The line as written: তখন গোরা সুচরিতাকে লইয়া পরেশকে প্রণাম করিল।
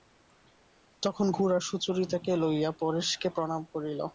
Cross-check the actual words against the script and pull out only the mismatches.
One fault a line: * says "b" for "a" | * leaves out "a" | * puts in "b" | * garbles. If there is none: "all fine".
all fine